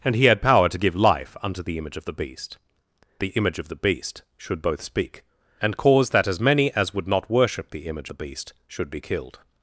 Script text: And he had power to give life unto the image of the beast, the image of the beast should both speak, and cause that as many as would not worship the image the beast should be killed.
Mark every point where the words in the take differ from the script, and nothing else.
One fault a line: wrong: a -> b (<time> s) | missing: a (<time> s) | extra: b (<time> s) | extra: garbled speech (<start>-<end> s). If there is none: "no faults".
no faults